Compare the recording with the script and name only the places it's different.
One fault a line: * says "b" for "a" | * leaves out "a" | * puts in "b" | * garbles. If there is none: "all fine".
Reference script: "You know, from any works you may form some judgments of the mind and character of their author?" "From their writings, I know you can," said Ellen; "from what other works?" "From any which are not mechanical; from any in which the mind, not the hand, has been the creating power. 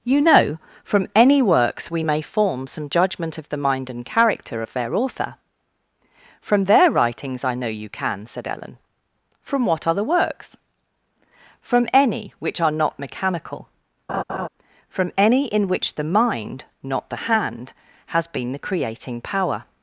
* says "we" for "you"
* says "judgment" for "judgments"